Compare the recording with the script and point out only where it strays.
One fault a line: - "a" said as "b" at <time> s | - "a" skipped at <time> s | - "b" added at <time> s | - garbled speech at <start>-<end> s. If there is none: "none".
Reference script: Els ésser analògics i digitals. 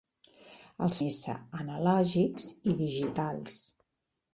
none